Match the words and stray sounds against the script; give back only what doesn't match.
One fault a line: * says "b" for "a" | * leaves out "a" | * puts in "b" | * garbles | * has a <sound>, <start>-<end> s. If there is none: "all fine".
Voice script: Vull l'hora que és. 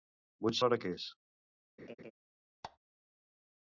* has a laugh, 1.8-2.1 s
* has a squeak, 2.6-2.8 s